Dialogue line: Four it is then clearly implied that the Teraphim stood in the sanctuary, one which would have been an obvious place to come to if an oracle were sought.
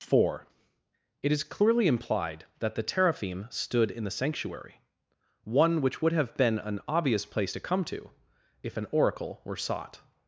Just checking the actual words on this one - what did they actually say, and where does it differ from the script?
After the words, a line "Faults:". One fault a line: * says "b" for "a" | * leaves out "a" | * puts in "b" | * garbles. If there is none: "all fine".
Four it is clearly implied that the Teraphim stood in the sanctuary, one which would have been an obvious place to come to if an oracle were sought.
Faults:
* leaves out "then"